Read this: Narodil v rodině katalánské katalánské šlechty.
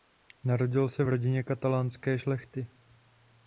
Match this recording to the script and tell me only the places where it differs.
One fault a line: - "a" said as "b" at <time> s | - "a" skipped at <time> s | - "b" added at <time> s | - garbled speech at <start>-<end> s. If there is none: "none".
- "se" added at 0.9 s
- "katalánské" skipped at 2.2 s